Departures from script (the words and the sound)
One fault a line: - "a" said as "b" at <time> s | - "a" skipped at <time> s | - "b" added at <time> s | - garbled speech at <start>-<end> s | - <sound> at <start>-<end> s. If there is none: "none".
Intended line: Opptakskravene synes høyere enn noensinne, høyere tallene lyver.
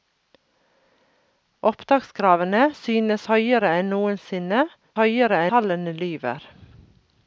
none